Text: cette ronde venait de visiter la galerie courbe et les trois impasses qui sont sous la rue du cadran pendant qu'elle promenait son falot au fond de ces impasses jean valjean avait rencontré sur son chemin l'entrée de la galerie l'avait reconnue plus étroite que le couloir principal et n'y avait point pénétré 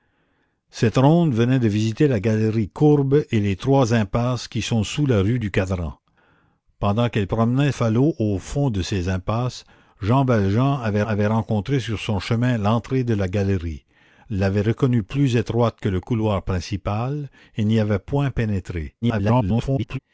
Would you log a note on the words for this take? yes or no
yes